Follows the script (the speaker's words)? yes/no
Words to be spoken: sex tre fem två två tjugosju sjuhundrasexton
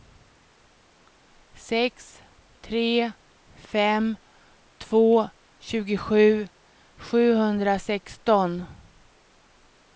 no